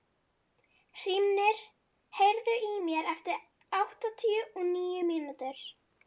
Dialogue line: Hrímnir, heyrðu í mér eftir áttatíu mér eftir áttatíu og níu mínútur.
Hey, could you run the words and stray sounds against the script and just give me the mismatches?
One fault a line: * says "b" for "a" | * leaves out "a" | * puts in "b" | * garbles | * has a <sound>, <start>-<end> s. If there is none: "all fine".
* leaves out "mér eftir áttatíu"